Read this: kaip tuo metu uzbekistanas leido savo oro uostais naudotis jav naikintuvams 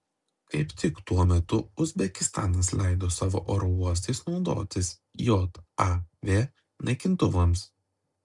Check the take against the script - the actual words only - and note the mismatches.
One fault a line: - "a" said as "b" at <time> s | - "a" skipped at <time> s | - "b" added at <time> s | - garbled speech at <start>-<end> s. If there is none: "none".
- "tik" added at 0.8 s